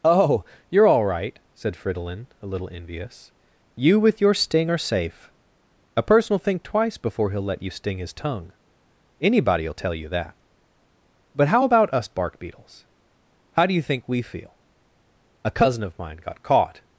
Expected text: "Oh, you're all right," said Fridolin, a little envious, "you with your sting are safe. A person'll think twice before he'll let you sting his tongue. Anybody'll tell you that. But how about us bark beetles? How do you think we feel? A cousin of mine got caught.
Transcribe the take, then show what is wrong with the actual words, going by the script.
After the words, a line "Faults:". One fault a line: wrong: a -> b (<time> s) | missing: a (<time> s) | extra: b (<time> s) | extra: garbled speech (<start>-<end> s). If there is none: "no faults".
"Oh, you're all right," said Fridolin, a little envious, "you with your sting are safe. A person'll think twice before he'll let you sting his tongue. Anybody'll tell you that. But how about us bark beetles? How do you think we feel? A cousin of mine got caught.
Faults:
no faults